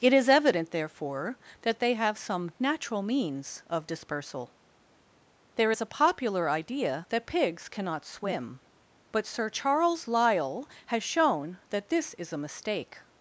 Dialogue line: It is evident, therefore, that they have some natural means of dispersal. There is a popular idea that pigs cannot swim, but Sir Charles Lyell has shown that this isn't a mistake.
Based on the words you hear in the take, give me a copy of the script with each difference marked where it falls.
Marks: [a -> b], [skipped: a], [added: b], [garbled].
It is evident, therefore, that they have some natural means of dispersal. There is a popular idea that pigs cannot swim, but Sir Charles Lyell has shown that this [isn't -> is] a mistake.